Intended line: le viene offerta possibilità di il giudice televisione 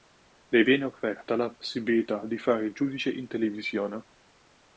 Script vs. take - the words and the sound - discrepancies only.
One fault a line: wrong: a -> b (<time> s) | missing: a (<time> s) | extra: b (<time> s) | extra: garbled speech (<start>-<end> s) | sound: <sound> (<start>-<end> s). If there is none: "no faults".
extra: la (1.3 s)
extra: fare (2.4 s)
extra: in (3.1 s)